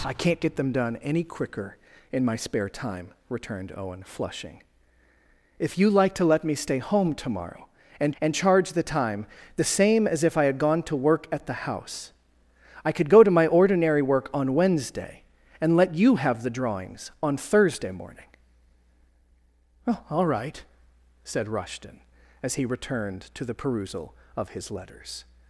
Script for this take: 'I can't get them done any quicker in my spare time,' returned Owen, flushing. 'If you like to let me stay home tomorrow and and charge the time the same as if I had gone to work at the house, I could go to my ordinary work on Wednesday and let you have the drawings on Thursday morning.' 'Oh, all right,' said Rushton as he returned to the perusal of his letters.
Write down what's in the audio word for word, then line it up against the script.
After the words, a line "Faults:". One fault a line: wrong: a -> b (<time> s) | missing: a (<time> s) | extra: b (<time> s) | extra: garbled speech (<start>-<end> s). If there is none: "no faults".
'I can't get them done any quicker in my spare time,' returned Owen, flushing. 'If you like to let me stay home tomorrow and and charge the time the same as if I had gone to work at the house, I could go to my ordinary work on Wednesday and let you have the drawings on Thursday morning.' 'Oh, all right,' said Rushton as he returned to the perusal of his letters.
Faults:
no faults